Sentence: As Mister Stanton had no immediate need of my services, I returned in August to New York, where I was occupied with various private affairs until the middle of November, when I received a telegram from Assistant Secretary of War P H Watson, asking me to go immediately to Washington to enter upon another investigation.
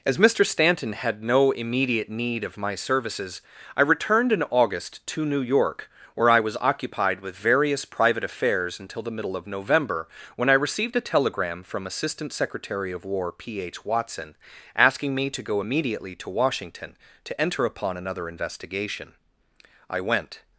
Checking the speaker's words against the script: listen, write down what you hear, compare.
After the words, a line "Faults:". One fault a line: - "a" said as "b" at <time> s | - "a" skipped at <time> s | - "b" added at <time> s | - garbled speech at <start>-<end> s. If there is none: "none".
As Mister Stanton had no immediate need of my services, I returned in August to New York, where I was occupied with various private affairs until the middle of November, when I received a telegram from Assistant Secretary of War P H Watson, asking me to go immediately to Washington to enter upon another investigation. I went
Faults:
- "I went" added at 19.9 s